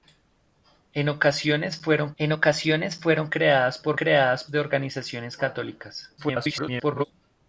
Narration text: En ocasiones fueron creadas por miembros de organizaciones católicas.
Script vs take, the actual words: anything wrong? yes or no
yes